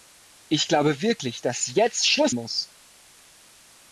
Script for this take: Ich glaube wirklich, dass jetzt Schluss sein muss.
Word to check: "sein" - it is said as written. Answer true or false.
false